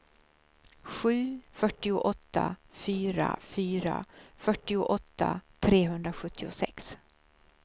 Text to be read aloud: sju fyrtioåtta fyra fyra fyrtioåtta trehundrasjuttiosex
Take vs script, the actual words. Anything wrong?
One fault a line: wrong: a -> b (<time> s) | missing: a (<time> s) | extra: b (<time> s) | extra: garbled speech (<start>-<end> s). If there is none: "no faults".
no faults